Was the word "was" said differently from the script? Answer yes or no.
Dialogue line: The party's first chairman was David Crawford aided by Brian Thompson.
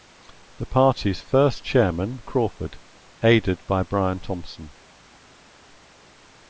yes